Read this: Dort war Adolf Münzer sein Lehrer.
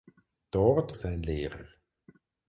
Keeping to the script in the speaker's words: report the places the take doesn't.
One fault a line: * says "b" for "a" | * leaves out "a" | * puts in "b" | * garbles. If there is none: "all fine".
* leaves out "war Adolf Münzer"